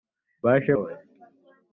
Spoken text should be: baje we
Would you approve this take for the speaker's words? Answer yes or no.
yes